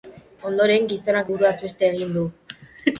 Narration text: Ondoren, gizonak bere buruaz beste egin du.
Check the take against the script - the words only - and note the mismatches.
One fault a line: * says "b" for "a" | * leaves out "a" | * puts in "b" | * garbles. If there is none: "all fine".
* leaves out "bere"